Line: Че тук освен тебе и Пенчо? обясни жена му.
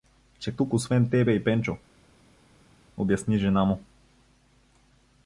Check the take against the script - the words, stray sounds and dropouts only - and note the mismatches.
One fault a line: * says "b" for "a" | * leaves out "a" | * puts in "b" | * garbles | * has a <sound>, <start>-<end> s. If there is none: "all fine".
all fine